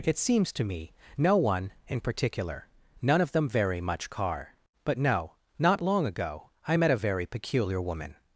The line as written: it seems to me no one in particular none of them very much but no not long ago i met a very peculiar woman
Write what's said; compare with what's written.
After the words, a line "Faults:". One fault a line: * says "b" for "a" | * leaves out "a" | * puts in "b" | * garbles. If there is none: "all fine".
it seems to me no one in particular none of them very much car but no not long ago i met a very peculiar woman
Faults:
* puts in "car"